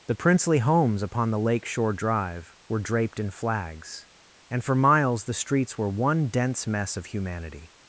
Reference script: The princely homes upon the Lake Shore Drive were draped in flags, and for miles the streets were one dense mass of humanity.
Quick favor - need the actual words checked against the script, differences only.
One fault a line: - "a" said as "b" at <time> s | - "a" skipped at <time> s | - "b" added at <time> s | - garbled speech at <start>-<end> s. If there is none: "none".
- "mass" said as "mess" at 6.7 s